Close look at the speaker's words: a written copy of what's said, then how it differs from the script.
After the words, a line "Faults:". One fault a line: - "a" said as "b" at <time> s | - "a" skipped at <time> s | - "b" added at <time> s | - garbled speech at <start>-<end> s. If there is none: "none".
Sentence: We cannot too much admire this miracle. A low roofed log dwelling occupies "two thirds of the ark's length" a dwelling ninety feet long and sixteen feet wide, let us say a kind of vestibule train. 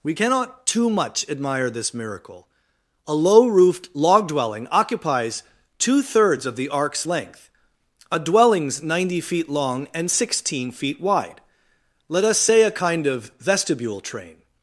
We cannot too much admire this miracle. A low roofed log dwelling occupies "two thirds of the ark's length" a dwellings ninety feet long and sixteen feet wide, let us say a kind of vestibule train.
Faults:
- "dwelling" said as "dwellings" at 8.2 s